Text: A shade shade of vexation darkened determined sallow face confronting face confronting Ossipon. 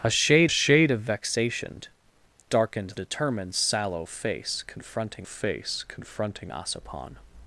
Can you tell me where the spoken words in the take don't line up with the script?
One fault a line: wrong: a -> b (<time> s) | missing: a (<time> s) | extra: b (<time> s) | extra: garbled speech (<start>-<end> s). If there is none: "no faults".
no faults